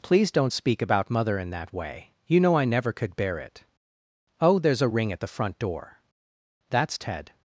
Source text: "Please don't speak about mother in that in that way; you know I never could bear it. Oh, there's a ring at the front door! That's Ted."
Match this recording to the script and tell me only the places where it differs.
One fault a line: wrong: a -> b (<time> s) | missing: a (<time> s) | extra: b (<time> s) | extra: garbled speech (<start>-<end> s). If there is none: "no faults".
missing: in that (1.7 s)